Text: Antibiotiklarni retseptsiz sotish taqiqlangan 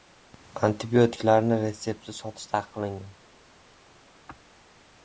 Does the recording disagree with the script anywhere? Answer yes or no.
no